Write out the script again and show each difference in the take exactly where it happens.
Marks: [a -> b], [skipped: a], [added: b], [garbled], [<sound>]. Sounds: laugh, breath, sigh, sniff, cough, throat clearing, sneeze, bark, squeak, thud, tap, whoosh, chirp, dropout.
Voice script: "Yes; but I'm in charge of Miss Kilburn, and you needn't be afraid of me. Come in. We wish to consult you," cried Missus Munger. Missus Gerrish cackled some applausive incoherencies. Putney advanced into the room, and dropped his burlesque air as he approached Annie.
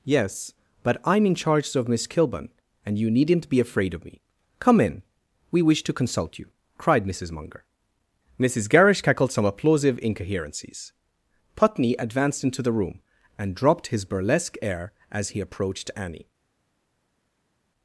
"Yes; but I'm in charge of Miss Kilburn, and you needn't be afraid of me. Come in. We wish to consult you," cried Missus Munger. Missus Gerrish cackled some applausive incoherencies. Putney advanced into the room, and dropped his burlesque air as he approached Annie.